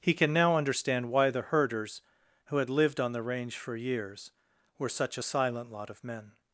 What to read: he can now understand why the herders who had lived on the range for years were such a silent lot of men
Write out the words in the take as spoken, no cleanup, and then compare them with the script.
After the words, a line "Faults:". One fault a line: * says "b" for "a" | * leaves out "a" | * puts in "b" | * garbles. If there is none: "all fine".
he can now understand why the herders who had lived on the range for years were such a silent lot of men
Faults:
all fine